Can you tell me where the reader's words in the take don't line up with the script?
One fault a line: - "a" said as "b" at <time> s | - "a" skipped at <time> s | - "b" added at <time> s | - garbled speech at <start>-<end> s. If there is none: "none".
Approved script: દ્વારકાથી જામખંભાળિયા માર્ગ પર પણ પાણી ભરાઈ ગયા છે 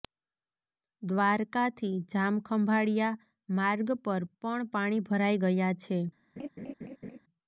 none